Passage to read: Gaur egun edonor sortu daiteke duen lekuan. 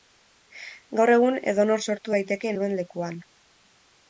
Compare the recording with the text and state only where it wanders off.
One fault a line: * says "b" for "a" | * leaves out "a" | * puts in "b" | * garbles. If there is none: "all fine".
all fine